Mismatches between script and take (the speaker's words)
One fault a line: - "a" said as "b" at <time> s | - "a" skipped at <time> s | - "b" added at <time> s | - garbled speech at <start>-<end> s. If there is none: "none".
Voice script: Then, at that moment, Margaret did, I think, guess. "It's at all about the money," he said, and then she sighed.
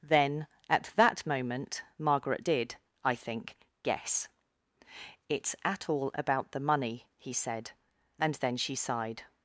none